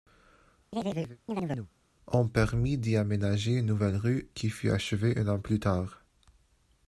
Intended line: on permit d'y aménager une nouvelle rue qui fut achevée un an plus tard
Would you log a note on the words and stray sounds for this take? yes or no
yes